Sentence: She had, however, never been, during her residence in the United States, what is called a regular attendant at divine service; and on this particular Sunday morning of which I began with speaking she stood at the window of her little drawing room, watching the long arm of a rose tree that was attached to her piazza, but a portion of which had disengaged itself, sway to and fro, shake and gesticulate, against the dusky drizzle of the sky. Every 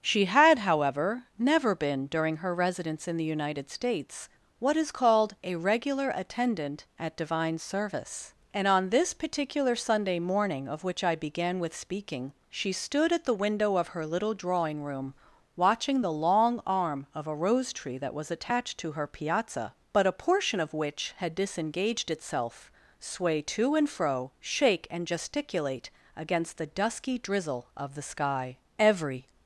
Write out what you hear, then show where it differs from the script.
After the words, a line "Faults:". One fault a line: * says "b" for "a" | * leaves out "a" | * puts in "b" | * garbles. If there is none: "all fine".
She had, however, never been, during her residence in the United States, what is called a regular attendant at divine service; and on this particular Sunday morning of which I began with speaking she stood at the window of her little drawing room, watching the long arm of a rose tree that was attached to her piazza, but a portion of which had disengaged itself, sway to and fro, shake and gesticulate, against the dusky drizzle of the sky. Every
Faults:
all fine